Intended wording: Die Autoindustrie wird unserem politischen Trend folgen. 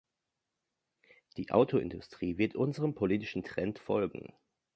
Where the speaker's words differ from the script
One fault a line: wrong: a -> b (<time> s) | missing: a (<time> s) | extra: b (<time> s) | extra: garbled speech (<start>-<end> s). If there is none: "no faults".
no faults